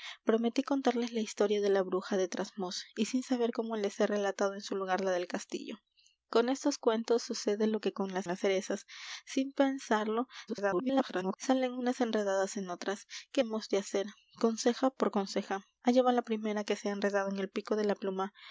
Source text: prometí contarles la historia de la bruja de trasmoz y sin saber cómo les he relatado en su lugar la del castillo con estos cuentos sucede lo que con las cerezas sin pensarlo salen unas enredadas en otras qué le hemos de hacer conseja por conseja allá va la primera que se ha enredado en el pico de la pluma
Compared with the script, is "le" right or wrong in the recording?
wrong